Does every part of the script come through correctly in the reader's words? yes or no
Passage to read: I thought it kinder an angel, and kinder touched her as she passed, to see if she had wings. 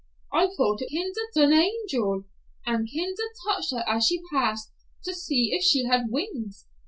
yes